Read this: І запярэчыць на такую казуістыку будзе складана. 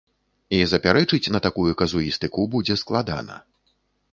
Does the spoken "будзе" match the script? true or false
true